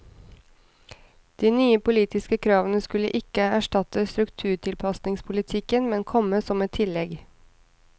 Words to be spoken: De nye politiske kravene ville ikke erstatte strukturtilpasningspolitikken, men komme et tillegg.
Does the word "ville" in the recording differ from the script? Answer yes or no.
yes